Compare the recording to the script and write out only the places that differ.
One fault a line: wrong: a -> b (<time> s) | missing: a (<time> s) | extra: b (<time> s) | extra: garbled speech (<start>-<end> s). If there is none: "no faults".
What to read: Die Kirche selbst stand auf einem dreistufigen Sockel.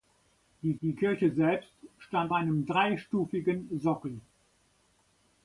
extra: die (0.8 s)
missing: auf (2.3 s)